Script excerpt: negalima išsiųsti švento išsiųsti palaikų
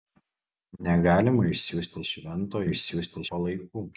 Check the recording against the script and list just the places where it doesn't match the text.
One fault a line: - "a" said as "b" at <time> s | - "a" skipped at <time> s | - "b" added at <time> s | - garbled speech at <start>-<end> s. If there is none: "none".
none